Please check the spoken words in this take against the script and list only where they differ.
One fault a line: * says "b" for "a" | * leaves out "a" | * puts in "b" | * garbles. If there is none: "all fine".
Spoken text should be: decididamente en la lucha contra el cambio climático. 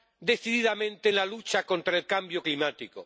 all fine